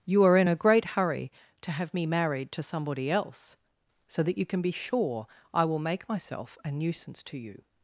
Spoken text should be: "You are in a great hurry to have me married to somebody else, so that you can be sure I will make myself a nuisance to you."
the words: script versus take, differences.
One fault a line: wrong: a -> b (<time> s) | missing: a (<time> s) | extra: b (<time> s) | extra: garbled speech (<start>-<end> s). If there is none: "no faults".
no faults